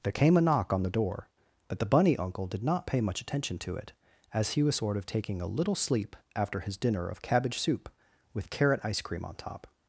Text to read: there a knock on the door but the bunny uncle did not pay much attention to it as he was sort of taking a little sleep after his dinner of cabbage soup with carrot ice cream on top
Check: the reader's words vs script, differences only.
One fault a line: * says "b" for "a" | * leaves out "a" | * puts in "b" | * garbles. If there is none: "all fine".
* puts in "came"